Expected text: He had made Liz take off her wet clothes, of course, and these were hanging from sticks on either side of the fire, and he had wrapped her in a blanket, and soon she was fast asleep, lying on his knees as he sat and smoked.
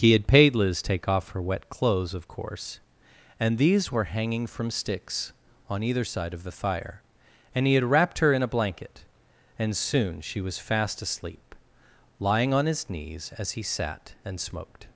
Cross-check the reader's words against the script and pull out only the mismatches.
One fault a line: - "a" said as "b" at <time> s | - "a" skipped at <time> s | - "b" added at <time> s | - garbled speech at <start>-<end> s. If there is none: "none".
- "made" said as "paid" at 0.2 s